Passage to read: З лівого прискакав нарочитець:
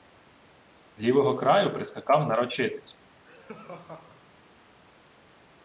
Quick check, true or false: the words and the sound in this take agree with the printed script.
false